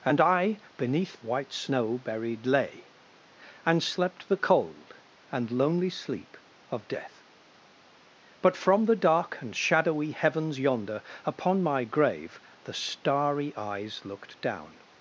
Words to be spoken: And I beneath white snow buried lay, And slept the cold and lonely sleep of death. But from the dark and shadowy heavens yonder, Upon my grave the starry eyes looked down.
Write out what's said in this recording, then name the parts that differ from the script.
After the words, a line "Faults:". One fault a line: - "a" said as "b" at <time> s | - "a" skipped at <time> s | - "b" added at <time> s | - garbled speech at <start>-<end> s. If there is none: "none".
And I beneath white snow buried lay, And slept the cold and lonely sleep of death. But from the dark and shadowy heavens yonder, Upon my grave the starry eyes looked down.
Faults:
none